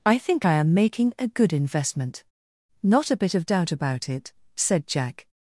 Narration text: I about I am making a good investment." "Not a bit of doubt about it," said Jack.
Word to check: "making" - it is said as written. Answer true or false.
true